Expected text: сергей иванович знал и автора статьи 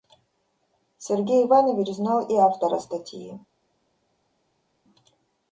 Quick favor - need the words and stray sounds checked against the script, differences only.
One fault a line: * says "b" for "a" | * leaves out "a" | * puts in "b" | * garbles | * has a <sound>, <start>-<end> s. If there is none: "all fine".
all fine